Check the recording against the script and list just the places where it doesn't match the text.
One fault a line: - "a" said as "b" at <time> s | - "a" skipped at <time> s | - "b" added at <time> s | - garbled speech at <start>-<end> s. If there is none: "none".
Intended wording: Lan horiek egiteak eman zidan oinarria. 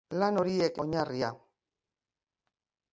- "egiteak eman zidan" skipped at 0.8 s